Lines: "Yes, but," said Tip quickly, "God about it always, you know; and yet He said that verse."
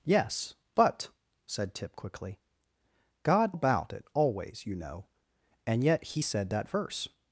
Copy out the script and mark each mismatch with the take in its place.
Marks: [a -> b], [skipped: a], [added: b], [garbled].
"Yes, but," said Tip quickly, "God about it always, you know; and yet He said that verse."